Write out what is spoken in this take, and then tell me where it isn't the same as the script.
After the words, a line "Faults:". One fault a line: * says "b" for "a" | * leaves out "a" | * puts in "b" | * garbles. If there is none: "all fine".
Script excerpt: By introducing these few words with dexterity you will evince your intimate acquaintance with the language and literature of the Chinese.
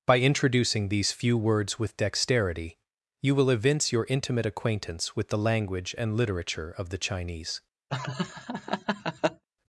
By introducing these few words with dexterity you will evince your intimate acquaintance with the language and literature of the Chinese.
Faults:
all fine